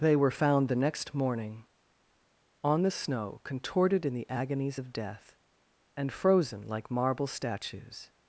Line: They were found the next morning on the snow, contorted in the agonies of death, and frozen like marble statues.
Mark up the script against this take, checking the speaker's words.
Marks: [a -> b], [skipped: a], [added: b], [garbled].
They were found the next morning on the snow, contorted in the agonies of death, and frozen like marble statues.